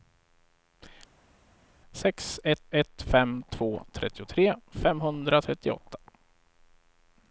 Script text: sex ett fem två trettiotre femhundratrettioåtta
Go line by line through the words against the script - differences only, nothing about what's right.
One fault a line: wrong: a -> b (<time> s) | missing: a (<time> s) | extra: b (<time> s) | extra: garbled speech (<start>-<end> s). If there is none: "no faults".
extra: ett (2.7 s)